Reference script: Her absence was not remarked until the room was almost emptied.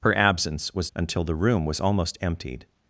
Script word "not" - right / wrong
wrong